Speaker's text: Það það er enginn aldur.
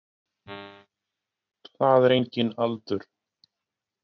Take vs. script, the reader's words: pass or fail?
fail